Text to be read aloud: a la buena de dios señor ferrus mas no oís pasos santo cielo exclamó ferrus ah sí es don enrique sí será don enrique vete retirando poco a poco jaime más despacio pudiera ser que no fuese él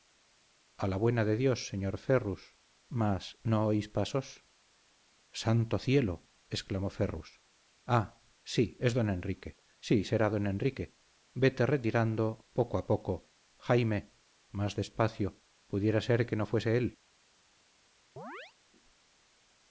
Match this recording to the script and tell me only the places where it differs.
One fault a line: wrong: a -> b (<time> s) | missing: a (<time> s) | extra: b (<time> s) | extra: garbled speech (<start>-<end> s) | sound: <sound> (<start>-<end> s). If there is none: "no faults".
sound: chirp (18.2-18.5 s)